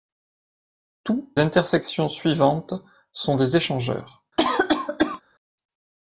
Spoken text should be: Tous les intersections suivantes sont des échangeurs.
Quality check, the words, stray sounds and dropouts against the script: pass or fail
fail